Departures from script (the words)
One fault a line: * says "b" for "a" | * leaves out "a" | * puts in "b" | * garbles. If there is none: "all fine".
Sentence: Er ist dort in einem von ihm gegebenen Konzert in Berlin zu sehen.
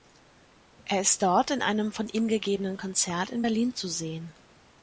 all fine